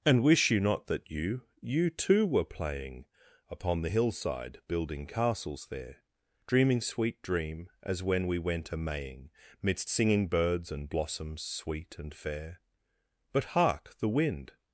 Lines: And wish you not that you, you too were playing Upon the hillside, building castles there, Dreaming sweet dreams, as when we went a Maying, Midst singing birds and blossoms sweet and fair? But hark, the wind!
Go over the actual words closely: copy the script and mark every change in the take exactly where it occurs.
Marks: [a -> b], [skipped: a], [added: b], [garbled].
And wish you not that you, you too were playing Upon the hillside, building castles there, Dreaming sweet [dreams, -> dream] as when we went a Maying, Midst singing birds and blossoms sweet and fair? But hark, the wind!